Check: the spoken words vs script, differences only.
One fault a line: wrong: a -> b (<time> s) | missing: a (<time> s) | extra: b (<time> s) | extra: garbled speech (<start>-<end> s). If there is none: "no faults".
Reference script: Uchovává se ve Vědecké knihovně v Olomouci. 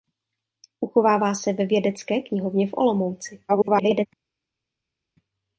extra: garbled speech (3.5-4.1 s)